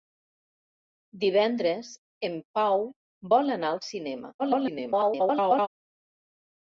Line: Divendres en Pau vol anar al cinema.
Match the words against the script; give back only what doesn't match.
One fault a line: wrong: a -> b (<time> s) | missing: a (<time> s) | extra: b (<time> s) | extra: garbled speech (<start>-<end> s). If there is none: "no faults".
extra: garbled speech (4.4-5.7 s)